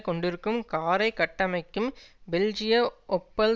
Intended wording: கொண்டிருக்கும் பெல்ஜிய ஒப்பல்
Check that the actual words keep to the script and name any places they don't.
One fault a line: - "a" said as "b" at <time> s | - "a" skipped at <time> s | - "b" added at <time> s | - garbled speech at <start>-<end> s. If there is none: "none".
- "காரை கட்டமைக்கும்" added at 0.7 s